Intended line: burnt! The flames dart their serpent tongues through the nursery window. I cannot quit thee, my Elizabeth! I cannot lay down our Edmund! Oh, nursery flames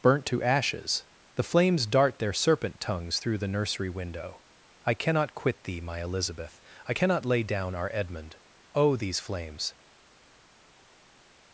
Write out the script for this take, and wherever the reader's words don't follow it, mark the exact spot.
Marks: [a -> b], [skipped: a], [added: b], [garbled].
burnt! [added: to ashes] The flames dart their serpent tongues through the nursery window. I cannot quit thee, my Elizabeth! I cannot lay down our Edmund! Oh, [nursery -> these] flames